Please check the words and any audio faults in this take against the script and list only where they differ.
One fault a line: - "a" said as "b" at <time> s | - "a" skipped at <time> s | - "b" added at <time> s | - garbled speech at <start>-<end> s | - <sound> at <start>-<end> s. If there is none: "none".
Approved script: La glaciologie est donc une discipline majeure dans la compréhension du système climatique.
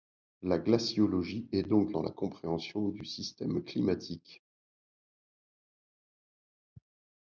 - "une discipline majeure" skipped at 1.9 s